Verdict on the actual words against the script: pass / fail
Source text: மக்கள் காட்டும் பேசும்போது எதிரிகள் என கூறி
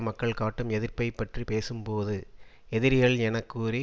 fail